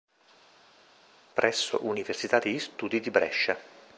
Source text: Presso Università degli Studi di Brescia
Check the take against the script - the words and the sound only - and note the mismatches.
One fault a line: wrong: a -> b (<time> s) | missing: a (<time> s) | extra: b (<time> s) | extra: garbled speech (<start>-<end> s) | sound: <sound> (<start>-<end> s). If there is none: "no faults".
no faults